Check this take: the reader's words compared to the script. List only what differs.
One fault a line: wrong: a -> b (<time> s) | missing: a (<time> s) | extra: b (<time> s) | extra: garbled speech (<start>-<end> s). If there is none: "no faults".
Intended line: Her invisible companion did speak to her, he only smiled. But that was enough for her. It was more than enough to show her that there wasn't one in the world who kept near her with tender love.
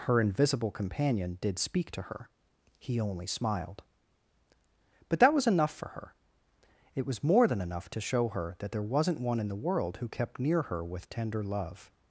no faults